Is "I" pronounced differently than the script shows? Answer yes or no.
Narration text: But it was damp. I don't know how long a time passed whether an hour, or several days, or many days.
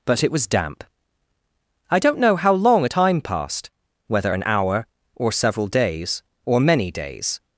no